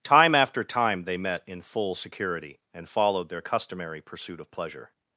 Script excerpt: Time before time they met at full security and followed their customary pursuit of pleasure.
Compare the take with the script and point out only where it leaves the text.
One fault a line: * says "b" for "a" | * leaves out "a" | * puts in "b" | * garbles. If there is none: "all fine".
* says "after" for "before"
* says "in" for "at"